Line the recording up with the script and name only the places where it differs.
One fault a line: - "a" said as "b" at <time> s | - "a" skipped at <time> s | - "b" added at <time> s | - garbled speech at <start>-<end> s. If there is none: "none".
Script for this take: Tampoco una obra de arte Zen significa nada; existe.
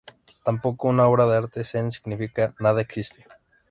none